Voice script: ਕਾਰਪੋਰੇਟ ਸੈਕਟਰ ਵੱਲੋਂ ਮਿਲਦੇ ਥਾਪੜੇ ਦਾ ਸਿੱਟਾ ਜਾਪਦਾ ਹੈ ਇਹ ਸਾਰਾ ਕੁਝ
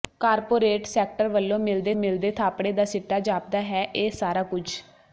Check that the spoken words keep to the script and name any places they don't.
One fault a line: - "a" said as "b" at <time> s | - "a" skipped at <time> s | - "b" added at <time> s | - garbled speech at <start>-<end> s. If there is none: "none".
- "ਮਿਲਦੇ" added at 1.9 s